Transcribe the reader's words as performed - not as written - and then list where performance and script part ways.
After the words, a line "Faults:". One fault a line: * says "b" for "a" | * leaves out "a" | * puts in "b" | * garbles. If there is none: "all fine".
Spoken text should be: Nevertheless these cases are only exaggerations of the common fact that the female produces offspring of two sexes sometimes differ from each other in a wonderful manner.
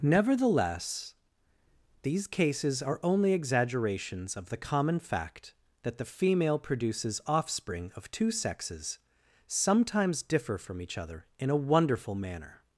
Nevertheless these cases are only exaggerations of the common fact that the female produces offspring of two sexes sometimes differ from each other in a wonderful manner.
Faults:
all fine